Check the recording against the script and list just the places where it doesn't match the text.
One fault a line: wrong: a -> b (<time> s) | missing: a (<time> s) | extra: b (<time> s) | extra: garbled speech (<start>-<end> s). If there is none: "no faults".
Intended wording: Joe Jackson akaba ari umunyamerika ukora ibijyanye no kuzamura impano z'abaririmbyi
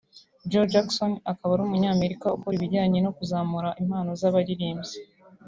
no faults